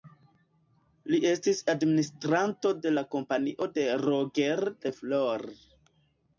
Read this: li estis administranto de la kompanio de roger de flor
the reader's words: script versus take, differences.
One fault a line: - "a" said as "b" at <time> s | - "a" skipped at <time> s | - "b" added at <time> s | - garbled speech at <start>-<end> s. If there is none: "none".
none